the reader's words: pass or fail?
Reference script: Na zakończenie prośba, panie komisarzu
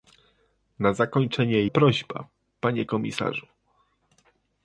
pass